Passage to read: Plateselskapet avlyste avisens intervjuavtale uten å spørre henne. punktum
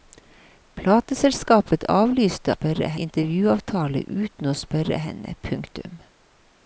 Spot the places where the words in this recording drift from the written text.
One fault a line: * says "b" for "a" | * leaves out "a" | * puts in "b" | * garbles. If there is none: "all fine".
* says "spørre" for "avisens"